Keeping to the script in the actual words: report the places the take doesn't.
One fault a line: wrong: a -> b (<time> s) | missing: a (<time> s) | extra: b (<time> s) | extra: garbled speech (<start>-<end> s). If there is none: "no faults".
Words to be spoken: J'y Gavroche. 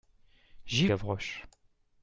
no faults